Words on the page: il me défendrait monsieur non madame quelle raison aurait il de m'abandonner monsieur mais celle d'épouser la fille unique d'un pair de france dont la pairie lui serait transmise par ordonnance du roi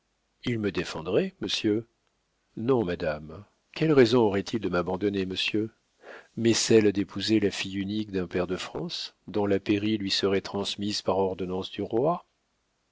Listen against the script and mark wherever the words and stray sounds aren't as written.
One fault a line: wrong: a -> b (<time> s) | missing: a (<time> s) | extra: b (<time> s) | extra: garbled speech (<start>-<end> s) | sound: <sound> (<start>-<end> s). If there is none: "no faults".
no faults